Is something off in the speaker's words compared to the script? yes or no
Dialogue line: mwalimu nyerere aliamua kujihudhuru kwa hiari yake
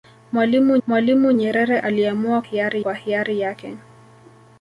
yes